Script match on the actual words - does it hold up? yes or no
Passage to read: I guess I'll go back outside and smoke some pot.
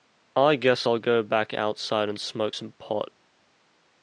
yes